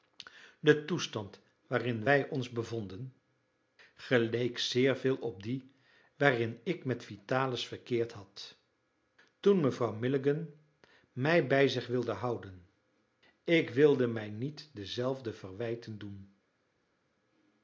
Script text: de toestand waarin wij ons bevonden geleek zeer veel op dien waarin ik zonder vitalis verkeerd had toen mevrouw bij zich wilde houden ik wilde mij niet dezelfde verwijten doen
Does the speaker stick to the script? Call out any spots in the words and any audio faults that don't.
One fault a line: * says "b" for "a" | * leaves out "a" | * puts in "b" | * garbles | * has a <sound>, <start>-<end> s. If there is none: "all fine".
* says "met" for "zonder"
* puts in "milligan mij"